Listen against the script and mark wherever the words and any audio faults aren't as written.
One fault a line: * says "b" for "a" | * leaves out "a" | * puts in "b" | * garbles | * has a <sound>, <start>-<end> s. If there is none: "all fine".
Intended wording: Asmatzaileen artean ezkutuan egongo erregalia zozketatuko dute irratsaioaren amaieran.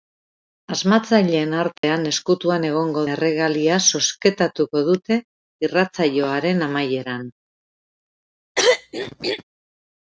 * has a dropout, 1.8-1.8 s
* has a throat clearing, 8.6-9.4 s